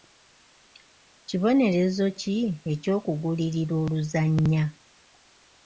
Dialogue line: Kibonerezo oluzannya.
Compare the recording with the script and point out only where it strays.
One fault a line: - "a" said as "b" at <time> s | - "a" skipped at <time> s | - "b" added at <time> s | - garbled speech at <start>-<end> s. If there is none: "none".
- "ki eky'okugulirira" added at 2.2 s